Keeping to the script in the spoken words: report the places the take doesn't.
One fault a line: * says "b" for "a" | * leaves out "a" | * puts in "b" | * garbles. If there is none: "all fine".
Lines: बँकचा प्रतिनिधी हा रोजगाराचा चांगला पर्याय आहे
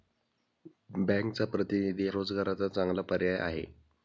* leaves out "हा"